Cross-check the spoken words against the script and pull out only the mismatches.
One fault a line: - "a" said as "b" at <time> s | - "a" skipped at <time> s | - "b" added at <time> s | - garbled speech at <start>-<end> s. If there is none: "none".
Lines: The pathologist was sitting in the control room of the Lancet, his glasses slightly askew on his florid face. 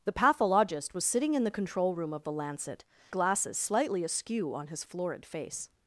- "his" skipped at 2.9 s